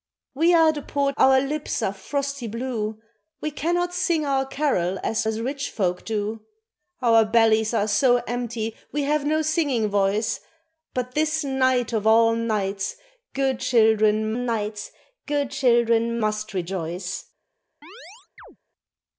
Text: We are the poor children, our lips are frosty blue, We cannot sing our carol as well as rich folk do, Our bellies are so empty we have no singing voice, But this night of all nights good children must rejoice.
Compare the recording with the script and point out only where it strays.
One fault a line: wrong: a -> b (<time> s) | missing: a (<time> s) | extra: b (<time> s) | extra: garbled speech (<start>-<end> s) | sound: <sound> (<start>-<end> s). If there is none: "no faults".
missing: children (1.1 s)
missing: well (5.3 s)
extra: nights good children (14.3 s)
sound: chirp (17.8-18.6 s)